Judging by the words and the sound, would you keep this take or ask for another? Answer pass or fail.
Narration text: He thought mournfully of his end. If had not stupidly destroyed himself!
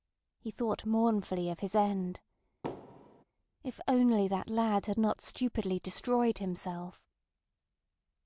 fail